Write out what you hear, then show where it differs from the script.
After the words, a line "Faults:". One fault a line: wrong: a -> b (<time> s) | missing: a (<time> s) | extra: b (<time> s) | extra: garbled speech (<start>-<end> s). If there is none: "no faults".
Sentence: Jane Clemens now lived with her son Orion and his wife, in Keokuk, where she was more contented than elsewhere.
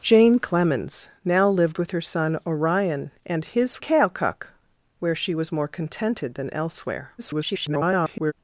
Jane Clemens now lived with her son Orion and his Keokuk, where she was more contented than elsewhere. [garbled]
Faults:
missing: wife in (3.8 s)
extra: garbled speech (7.2-8.3 s)